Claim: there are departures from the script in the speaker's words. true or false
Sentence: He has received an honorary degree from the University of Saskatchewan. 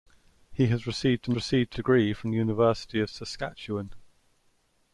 true